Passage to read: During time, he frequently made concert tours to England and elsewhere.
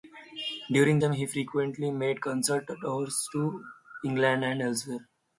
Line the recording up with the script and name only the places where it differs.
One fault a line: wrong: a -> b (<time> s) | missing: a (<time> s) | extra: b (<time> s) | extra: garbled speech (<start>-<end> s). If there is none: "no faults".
no faults